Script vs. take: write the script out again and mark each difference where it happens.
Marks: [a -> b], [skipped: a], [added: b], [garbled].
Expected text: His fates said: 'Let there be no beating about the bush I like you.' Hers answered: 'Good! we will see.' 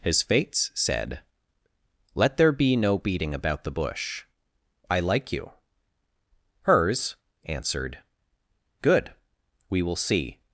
His fates said: 'Let there be no beating about the bush I like you.' Hers answered: 'Good! we will see.'